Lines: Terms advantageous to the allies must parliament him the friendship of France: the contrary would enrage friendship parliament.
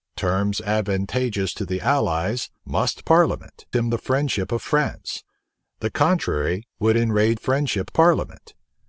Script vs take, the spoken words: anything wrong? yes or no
no